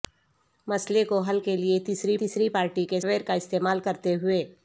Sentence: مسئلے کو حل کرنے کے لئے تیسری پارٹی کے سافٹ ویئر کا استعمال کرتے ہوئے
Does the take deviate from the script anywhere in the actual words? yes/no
yes